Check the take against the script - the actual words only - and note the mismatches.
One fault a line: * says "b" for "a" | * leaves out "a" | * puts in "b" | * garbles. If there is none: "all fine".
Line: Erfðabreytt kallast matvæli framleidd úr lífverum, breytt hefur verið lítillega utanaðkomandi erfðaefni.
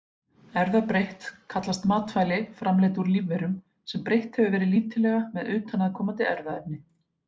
* puts in "sem"
* puts in "með"